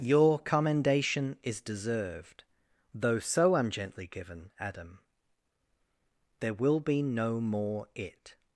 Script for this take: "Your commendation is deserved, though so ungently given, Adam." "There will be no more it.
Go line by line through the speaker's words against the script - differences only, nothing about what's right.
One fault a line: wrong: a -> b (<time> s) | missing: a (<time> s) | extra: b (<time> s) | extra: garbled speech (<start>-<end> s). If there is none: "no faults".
no faults